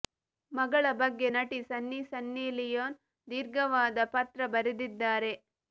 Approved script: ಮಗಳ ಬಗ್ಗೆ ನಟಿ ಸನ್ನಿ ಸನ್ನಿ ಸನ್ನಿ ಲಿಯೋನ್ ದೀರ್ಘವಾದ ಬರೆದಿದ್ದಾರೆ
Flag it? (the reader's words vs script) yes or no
yes